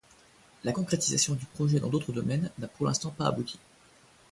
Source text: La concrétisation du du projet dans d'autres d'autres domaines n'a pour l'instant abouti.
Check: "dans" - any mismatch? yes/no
no